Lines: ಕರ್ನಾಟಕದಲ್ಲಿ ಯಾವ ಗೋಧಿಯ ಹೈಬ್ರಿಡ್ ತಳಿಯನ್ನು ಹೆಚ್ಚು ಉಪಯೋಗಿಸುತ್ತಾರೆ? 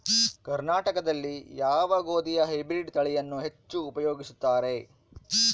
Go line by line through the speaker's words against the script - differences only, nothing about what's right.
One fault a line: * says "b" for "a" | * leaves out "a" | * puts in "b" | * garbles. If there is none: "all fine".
all fine